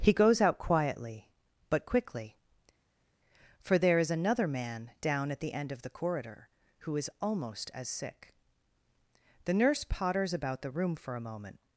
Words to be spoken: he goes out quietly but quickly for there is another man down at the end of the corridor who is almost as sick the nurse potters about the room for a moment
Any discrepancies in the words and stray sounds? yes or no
no